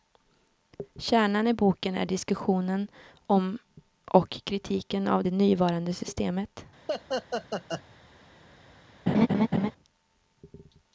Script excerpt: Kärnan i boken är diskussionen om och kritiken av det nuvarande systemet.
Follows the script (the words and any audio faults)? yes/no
no